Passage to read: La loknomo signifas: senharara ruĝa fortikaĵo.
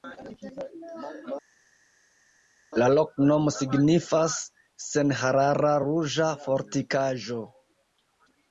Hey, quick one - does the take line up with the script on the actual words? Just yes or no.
yes